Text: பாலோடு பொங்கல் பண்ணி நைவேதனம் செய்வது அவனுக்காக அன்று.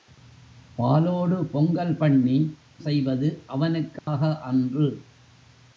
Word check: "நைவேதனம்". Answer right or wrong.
wrong